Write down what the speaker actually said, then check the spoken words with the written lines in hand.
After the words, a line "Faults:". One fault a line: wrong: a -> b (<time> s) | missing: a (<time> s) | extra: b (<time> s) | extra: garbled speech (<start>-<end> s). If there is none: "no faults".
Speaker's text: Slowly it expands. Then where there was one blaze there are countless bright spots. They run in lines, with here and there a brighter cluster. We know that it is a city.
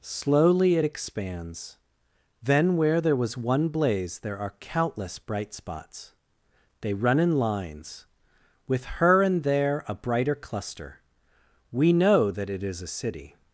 Slowly it expands. Then where there was one blaze there are countless bright spots. They run in lines, with her and there a brighter cluster. We know that it is a city.
Faults:
wrong: here -> her (8.9 s)